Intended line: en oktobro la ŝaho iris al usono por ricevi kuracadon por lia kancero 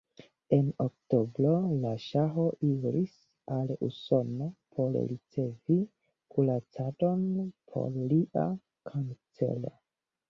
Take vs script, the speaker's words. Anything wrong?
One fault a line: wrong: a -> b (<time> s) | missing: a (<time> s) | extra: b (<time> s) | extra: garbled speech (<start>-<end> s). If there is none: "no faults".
no faults